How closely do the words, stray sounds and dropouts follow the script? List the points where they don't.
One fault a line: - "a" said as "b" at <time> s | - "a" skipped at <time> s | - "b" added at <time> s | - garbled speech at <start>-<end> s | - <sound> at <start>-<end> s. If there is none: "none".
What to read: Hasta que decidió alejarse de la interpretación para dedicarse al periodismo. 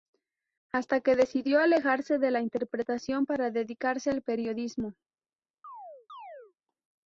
- chirp at 5.6-6.5 s